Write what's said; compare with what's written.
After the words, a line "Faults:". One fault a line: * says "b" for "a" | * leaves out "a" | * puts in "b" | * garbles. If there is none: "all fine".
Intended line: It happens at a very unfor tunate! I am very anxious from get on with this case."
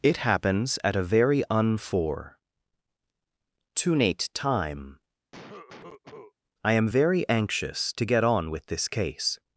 It happens at a very unfor tunate time! I am very anxious to get on with this case."
Faults:
* puts in "time"
* says "to" for "from"